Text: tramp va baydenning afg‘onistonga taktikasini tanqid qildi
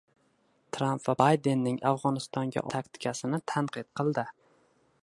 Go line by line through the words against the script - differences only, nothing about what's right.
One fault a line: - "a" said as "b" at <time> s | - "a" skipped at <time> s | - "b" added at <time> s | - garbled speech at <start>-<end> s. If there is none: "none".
none